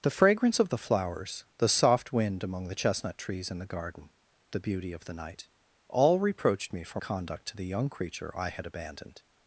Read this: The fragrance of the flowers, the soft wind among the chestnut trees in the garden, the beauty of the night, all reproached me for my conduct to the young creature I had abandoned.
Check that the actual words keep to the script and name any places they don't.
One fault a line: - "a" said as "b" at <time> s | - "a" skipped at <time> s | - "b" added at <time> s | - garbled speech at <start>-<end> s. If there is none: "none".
- "my" skipped at 7.0 s